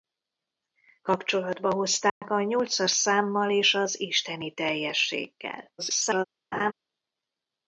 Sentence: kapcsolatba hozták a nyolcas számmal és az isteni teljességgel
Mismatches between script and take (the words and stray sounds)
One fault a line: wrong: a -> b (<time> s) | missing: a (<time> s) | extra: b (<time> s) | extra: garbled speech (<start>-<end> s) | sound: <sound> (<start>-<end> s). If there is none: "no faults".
sound: dropout (2.1-2.2 s)
extra: garbled speech (5.8-6.3 s)
sound: laugh (6.5-6.7 s)